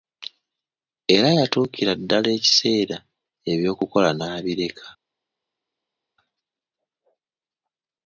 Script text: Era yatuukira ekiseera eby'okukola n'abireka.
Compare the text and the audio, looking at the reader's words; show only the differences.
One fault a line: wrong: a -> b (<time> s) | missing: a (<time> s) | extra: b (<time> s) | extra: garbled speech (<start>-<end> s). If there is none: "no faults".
extra: ddala (2.0 s)